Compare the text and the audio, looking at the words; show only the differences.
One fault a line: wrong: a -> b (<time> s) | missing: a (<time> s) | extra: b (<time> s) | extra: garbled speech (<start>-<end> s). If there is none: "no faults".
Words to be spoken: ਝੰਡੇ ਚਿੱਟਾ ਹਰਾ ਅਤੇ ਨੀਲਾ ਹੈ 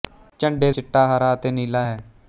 no faults